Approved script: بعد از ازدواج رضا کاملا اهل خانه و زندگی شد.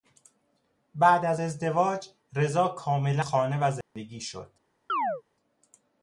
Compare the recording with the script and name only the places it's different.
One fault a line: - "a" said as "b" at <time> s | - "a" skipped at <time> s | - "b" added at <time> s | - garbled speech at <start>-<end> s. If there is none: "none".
- "اهل" skipped at 3.2 s